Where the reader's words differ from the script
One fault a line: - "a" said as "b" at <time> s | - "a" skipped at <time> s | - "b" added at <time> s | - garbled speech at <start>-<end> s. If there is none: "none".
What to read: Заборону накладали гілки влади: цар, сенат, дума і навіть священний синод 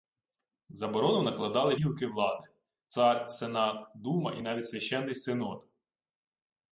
none